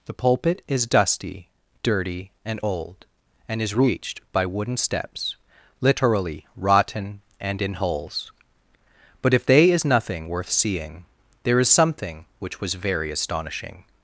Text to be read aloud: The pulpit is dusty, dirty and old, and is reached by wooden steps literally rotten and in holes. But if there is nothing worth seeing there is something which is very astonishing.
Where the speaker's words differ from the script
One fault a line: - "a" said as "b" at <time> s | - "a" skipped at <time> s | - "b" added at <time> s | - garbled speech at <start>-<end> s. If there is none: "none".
- "there" said as "they" at 9.4 s
- "is" said as "was" at 12.6 s